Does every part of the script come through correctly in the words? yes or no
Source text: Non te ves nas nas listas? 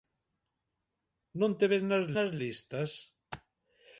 yes